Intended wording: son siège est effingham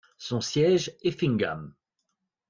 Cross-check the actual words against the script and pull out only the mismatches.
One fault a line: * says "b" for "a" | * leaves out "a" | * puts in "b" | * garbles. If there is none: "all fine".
* leaves out "est"